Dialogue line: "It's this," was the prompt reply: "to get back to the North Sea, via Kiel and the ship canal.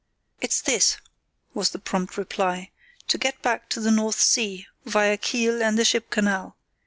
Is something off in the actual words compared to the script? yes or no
no